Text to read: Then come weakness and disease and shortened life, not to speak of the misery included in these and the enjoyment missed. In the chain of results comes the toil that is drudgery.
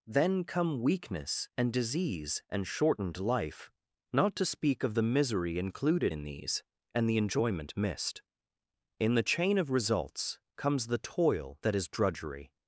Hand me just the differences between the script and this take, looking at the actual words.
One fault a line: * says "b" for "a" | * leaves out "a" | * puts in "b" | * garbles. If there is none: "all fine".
all fine